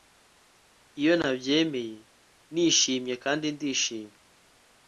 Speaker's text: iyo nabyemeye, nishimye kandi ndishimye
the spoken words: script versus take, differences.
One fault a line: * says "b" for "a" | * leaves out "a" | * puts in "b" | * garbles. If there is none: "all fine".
all fine